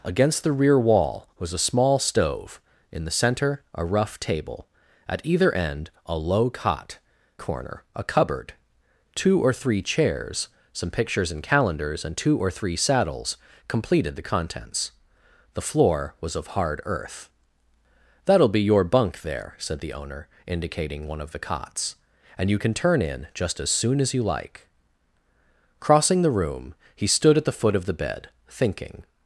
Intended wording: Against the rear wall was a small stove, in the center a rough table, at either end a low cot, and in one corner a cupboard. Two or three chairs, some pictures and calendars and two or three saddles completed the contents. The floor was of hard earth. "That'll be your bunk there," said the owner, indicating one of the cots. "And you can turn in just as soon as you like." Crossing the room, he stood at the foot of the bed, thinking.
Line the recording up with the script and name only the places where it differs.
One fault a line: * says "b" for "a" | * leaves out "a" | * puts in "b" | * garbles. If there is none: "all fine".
* leaves out "and in one"